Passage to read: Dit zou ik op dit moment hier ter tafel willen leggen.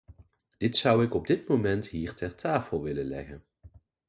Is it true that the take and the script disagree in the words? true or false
false